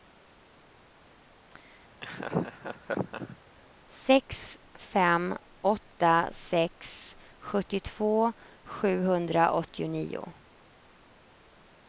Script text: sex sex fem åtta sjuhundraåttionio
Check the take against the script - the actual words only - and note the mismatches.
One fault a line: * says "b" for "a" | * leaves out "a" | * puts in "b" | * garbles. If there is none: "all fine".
* leaves out "sex"
* puts in "sex sjuttiotvå"